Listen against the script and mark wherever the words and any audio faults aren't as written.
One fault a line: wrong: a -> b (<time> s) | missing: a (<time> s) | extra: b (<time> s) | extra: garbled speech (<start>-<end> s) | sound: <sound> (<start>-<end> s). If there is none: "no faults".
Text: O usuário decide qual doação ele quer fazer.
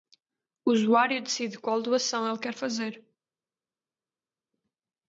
no faults